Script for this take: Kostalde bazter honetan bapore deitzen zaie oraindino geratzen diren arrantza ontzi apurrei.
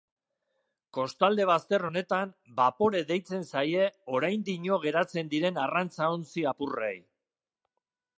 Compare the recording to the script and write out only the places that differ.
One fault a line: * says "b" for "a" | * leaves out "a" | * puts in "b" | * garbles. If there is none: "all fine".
all fine